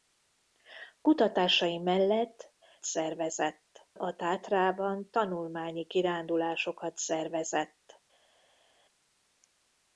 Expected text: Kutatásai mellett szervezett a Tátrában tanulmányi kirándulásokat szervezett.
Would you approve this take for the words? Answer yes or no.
yes